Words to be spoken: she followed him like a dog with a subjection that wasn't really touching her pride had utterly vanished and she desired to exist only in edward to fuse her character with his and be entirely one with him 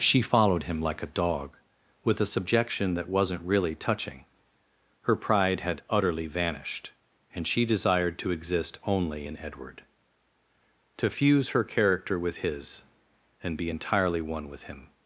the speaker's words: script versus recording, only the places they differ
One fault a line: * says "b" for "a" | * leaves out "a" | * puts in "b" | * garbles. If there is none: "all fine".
all fine